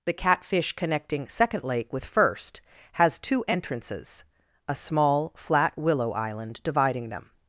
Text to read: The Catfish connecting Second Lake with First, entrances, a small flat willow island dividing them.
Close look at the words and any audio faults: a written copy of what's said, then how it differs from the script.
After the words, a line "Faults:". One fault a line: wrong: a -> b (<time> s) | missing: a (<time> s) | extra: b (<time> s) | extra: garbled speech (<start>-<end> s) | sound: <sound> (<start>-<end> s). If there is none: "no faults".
The Catfish connecting Second Lake with First, has two entrances, a small flat willow island dividing them.
Faults:
extra: has two (2.9 s)